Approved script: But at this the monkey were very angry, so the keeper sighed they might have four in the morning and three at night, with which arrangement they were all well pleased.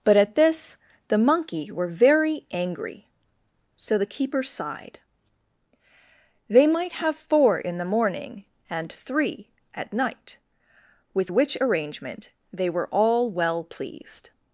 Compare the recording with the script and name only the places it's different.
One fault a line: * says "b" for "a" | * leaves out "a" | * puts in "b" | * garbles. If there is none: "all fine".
all fine